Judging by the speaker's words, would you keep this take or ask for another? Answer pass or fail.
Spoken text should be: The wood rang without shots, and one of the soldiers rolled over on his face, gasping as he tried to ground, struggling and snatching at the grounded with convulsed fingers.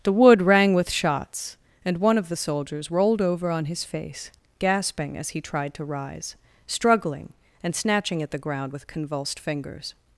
fail